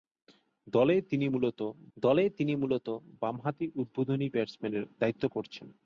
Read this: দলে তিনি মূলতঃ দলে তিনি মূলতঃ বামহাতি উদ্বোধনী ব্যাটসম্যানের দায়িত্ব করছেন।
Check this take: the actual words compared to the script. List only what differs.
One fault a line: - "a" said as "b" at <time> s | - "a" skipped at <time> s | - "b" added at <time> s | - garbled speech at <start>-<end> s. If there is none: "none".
none